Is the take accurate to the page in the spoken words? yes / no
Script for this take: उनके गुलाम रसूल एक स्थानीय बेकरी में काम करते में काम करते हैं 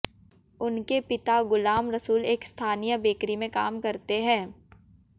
no